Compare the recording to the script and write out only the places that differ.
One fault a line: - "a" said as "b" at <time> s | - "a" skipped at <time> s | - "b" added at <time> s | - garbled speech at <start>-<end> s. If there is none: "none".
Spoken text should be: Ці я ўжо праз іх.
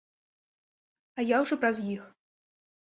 - "Ці" said as "А" at 1.2 s